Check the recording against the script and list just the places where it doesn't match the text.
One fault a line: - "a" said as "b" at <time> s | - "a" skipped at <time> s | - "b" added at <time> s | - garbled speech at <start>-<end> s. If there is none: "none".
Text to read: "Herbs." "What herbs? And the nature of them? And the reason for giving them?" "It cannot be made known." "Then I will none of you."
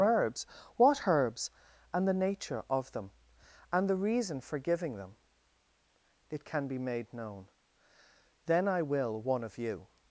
- "cannot" said as "can" at 6.4 s
- "none" said as "one" at 9.2 s